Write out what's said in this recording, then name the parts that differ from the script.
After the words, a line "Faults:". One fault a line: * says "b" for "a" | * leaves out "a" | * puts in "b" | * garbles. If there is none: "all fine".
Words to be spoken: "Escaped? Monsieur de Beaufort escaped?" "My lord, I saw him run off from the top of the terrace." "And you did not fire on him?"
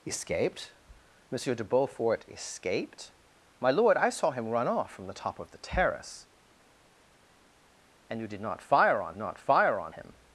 "Escaped? Monsieur de Beaufort escaped?" "My lord, I saw him run off from the top of the terrace." "And you did not fire on not fire on him?"
Faults:
* puts in "not fire on"